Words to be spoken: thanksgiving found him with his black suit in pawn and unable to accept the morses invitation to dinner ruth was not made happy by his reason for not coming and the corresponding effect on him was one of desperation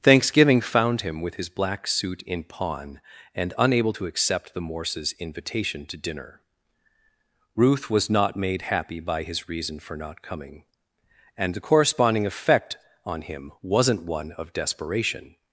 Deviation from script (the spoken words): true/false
true